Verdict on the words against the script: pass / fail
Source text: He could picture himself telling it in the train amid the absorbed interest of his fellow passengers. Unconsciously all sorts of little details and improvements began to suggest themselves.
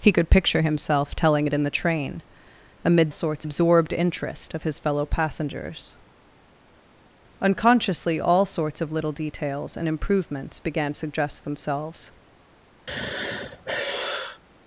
fail